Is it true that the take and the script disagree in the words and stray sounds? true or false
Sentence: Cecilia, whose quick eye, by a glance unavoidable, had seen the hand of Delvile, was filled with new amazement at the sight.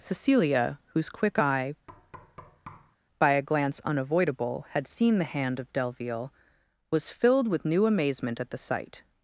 true